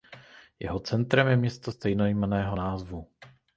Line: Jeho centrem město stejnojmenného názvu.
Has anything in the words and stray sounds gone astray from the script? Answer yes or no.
yes